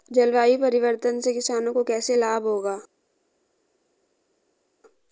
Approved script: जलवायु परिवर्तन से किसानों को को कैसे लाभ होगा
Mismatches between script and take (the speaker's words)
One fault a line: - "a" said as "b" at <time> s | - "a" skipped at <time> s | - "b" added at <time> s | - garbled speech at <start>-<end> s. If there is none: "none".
- "को" skipped at 1.8 s